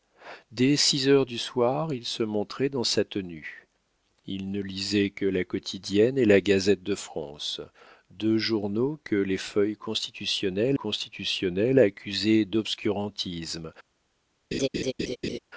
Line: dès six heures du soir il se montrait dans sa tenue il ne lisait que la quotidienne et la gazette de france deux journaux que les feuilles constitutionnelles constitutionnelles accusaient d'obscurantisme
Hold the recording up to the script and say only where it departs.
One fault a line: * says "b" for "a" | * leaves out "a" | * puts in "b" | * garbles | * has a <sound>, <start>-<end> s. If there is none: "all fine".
* has a laugh, 14.5-15.4 s